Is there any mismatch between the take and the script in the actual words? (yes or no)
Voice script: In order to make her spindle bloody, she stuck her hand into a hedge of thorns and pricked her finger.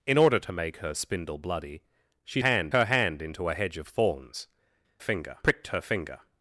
yes